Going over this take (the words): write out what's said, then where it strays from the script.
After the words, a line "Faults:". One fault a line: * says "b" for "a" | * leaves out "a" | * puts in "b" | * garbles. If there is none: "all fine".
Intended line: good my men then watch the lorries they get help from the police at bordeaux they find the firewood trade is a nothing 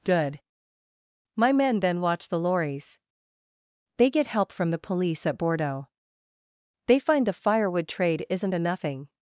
good my men then watch the lorries they get help from the police at bordeaux they find the firewood trade isn't a nothing
Faults:
* says "isn't" for "is"